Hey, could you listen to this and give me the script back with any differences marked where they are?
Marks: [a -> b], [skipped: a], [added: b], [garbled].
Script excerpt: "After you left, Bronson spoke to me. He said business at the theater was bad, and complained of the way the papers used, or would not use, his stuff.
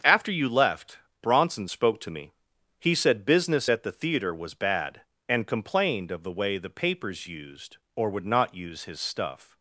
"After you left, Bronson spoke to me. He said business at the theater was bad, and complained of the way the papers used, or would not use, his stuff.